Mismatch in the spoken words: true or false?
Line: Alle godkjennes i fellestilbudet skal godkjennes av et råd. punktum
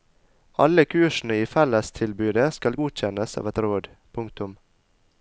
true